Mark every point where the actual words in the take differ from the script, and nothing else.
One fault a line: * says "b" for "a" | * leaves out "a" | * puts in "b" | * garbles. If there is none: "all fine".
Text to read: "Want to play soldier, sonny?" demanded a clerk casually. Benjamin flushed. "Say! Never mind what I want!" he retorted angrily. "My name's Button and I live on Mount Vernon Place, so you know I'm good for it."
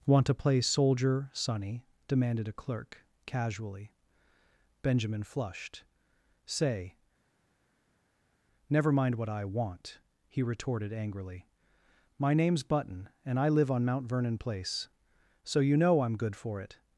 all fine